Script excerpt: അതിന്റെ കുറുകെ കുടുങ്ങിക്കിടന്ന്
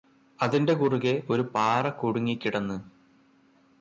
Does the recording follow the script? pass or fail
fail